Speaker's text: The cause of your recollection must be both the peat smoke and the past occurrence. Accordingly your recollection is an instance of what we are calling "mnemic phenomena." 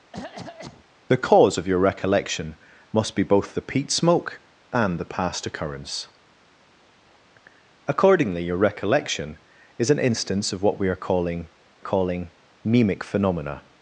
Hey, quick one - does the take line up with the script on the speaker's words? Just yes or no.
no